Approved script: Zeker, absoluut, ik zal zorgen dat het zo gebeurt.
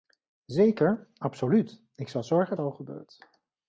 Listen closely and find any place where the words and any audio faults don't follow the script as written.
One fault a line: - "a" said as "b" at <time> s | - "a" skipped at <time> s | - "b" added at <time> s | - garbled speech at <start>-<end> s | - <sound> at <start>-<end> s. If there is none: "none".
- "dat het" skipped at 2.6 s